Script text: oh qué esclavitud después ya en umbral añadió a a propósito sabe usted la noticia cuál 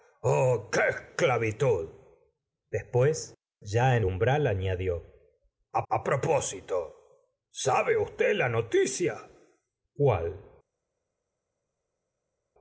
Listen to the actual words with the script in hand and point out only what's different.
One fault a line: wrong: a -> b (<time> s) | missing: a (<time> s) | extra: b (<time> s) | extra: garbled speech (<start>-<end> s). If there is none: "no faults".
no faults